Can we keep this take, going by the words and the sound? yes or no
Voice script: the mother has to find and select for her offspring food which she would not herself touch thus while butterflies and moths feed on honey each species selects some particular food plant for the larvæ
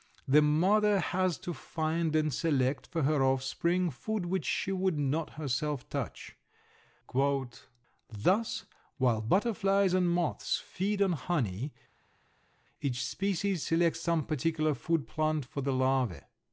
yes